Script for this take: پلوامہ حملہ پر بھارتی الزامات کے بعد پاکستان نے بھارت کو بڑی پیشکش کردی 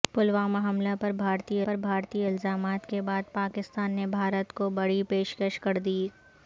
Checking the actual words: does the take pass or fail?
fail